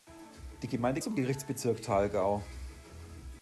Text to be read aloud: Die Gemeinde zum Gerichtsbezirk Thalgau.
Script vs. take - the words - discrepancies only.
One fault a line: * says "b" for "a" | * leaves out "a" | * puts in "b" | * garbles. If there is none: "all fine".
all fine